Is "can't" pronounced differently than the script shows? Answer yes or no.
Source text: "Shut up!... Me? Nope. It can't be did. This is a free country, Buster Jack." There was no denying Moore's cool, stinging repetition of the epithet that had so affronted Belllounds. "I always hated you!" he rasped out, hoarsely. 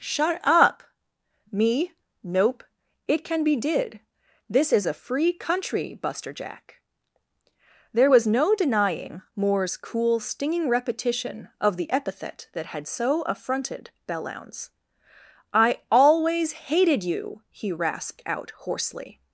yes